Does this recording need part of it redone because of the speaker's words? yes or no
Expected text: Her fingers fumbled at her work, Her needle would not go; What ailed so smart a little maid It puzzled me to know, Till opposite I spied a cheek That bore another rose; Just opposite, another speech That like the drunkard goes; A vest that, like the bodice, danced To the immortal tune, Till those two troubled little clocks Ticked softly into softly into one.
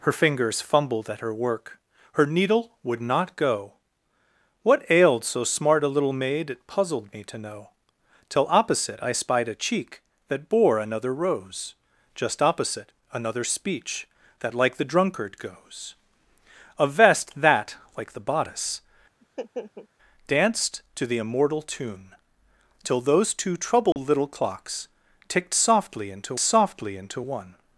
no